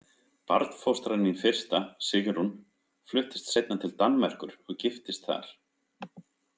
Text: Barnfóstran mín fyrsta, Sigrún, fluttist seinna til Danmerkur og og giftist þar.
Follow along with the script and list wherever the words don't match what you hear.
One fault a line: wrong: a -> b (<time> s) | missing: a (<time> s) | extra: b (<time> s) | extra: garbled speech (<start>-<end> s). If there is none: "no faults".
missing: og (4.8 s)